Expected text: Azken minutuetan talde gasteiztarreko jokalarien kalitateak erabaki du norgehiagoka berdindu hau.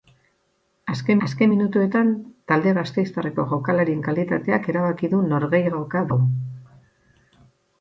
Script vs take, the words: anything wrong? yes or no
yes